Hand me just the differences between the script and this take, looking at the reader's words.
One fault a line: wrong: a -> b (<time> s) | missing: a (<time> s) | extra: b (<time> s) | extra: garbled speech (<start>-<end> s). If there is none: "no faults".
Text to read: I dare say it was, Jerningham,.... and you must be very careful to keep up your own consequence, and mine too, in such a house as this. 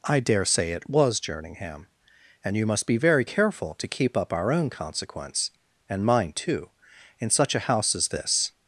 wrong: your -> our (4.3 s)